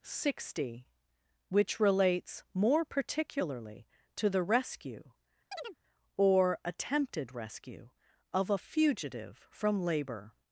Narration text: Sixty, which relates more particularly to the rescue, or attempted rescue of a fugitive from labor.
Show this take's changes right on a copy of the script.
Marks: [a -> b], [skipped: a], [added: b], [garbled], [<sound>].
Sixty, which relates more particularly to the rescue, [chirp] or attempted rescue of a fugitive from labor.